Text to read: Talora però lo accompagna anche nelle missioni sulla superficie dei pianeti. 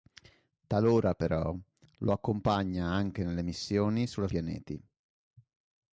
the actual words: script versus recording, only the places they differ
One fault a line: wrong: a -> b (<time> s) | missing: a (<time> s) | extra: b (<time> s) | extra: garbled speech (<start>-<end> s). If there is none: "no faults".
missing: superficie dei (4.3 s)